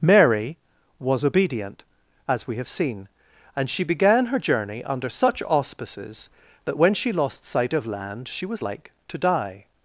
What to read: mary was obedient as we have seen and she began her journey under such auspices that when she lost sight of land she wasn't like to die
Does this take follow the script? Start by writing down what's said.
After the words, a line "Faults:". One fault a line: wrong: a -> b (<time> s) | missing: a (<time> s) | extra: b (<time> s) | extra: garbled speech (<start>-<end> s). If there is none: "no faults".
mary was obedient as we have seen and she began her journey under such auspices that when she lost sight of land she was like to die
Faults:
wrong: wasn't -> was (8.5 s)